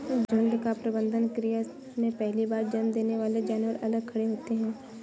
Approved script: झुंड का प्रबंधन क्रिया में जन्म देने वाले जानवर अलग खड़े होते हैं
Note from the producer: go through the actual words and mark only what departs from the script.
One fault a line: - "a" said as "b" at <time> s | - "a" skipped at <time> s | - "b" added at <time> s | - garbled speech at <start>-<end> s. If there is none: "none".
- "पहली बार" added at 2.1 s